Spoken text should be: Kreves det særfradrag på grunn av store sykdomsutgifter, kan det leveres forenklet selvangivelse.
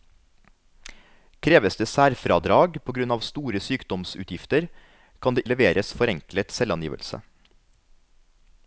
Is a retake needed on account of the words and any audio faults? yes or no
no